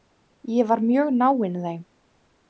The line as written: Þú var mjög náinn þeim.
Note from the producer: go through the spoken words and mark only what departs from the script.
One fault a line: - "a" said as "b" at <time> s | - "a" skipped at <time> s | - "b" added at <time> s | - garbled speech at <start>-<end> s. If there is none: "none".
- "Þú" said as "Ég" at 0.5 s